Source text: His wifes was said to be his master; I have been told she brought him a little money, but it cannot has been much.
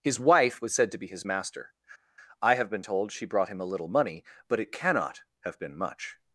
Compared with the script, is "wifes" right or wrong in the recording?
wrong